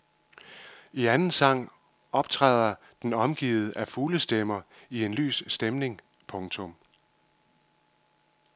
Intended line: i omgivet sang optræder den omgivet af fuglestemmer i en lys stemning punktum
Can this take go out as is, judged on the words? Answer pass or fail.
fail